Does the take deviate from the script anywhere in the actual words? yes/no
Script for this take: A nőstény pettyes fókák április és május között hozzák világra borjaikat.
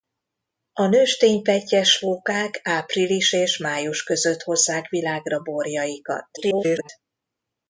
yes